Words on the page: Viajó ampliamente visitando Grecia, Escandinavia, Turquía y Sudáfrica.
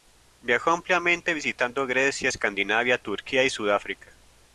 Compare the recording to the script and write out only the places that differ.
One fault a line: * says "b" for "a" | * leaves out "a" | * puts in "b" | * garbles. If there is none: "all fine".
all fine